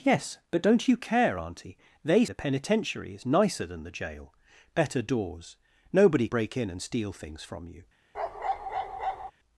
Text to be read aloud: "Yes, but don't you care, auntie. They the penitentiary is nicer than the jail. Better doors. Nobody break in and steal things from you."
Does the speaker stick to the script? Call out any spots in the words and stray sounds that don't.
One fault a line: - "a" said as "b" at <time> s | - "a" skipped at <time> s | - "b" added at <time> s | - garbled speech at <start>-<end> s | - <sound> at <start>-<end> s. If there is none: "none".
- bark at 8.1-9.3 s